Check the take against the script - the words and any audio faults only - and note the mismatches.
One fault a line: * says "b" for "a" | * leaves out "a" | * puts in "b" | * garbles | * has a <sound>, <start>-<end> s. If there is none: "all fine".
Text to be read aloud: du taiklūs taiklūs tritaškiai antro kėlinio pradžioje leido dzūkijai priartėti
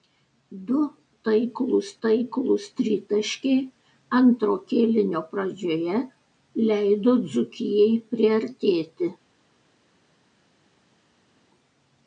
all fine